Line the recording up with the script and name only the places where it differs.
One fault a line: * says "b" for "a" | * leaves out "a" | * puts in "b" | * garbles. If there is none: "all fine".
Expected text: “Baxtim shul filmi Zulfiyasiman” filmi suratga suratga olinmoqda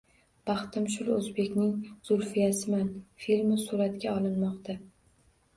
* says "o‘zbekning" for "filmi"
* leaves out "suratga"